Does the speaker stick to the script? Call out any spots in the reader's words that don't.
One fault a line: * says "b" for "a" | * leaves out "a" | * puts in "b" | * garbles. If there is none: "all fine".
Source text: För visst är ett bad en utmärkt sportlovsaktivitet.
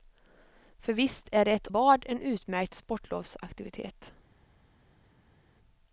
all fine